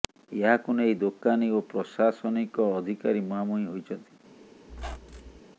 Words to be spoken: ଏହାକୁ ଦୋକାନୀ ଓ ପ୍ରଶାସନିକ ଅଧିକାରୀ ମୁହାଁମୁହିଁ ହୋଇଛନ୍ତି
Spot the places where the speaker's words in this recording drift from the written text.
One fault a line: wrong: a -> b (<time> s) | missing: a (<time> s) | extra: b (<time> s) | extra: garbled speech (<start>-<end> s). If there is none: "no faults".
extra: ନେଇ (0.8 s)